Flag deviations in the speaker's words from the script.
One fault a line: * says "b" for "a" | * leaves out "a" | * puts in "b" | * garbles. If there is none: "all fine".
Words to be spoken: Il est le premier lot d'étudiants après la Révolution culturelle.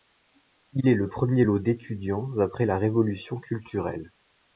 all fine